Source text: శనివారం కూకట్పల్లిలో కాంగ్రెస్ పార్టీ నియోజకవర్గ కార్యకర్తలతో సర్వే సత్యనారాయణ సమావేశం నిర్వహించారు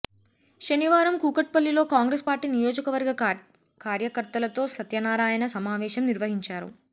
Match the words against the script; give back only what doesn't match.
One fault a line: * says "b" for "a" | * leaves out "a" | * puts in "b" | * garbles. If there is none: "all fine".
* leaves out "సర్వే"